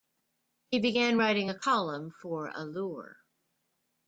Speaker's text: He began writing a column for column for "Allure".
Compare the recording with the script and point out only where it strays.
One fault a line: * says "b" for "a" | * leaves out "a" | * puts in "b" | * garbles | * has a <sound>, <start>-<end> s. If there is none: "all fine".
* leaves out "column for"